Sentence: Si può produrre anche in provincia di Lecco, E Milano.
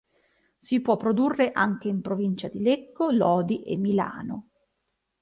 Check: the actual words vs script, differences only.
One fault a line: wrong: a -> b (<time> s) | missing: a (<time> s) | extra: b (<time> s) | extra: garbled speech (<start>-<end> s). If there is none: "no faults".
extra: Lodi (3.1 s)